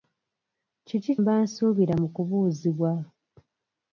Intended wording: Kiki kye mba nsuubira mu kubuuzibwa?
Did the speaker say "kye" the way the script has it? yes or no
no